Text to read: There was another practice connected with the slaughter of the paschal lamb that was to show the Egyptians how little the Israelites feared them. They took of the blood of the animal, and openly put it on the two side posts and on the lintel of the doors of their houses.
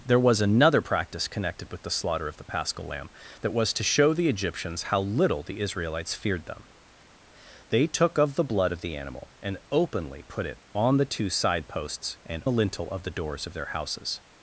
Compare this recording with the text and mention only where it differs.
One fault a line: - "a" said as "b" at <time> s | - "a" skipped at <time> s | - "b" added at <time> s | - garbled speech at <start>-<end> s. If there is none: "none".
- "on" skipped at 12.4 s